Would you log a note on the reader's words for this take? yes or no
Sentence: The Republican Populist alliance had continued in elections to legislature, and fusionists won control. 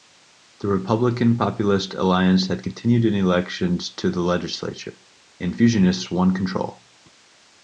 yes